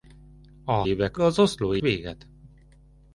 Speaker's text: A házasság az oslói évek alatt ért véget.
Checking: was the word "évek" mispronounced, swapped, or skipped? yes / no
yes